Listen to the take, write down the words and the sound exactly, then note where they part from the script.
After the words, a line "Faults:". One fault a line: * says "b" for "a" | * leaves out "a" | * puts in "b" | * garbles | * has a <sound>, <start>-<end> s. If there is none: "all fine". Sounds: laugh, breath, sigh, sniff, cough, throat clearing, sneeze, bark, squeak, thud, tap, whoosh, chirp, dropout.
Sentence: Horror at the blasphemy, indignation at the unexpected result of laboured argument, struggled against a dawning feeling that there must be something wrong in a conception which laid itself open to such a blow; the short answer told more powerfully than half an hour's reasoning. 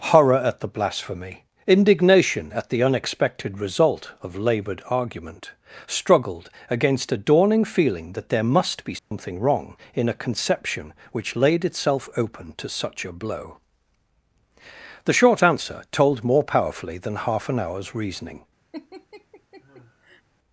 Horror at the blasphemy, indignation at the unexpected result of laboured argument, struggled against a dawning feeling that there must be something wrong in a conception which laid itself open to such a blow; the short answer told more powerfully than half an hour's reasoning.
Faults:
* has a dropout, 9.0-9.1 s
* has a laugh, 18.7-20.2 s